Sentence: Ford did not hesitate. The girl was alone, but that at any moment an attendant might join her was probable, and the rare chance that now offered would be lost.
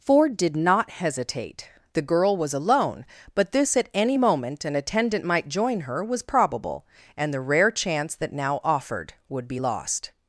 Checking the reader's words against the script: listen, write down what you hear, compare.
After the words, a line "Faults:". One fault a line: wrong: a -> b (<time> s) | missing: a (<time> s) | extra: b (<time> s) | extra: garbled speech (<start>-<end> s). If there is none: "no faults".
Ford did not hesitate. The girl was alone, but this at any moment an attendant might join her was probable, and the rare chance that now offered would be lost.
Faults:
wrong: that -> this (3.5 s)